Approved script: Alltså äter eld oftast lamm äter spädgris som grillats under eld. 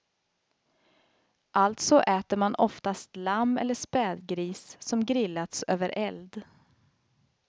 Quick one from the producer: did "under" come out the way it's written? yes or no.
no